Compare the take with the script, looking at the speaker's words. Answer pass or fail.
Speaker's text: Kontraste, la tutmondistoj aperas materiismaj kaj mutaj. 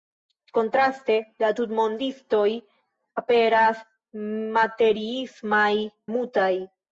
fail